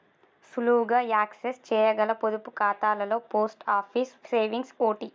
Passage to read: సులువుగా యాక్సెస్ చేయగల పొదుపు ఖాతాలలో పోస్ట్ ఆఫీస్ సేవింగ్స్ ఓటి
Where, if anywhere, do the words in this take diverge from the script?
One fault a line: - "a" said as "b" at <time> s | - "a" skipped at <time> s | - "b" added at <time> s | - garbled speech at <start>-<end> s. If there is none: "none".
none